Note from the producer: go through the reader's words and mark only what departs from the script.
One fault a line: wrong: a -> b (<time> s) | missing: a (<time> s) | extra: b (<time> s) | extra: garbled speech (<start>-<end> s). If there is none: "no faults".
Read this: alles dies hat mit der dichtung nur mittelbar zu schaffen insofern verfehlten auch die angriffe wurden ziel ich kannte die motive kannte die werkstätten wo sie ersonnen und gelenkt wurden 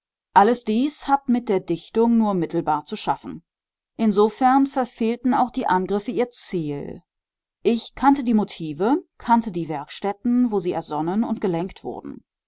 wrong: wurden -> ihr (6.1 s)